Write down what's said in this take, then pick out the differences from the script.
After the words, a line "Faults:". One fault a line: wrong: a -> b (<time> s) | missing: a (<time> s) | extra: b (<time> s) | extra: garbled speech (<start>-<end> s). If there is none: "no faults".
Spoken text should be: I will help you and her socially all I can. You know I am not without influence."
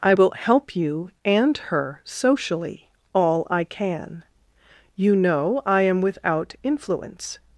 I will help you and her socially all I can. You know I am without influence."
Faults:
missing: not (6.0 s)